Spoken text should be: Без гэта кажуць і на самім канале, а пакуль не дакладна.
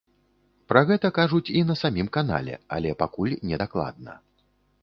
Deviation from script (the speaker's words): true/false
true